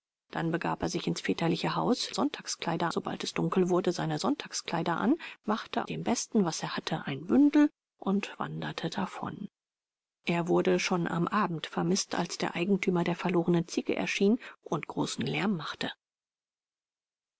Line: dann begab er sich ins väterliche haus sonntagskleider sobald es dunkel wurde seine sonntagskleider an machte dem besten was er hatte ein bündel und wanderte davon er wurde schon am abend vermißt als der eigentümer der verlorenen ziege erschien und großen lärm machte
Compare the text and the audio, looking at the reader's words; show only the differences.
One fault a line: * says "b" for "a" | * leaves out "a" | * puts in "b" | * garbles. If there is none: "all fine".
all fine